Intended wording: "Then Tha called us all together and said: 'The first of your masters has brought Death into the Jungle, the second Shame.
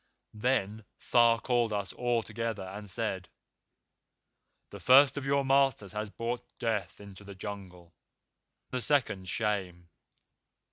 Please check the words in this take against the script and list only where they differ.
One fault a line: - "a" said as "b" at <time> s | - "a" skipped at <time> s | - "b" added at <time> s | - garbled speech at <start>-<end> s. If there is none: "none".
none